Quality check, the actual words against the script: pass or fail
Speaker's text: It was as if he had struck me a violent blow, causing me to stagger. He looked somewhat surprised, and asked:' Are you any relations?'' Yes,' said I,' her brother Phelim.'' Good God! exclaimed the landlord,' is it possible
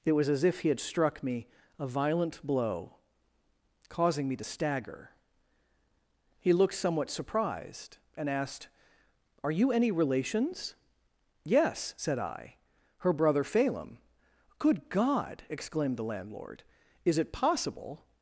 pass